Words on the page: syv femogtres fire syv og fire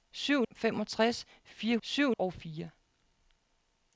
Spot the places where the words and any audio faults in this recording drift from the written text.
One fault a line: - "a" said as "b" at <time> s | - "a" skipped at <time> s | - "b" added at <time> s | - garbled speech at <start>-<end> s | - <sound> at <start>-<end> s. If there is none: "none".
none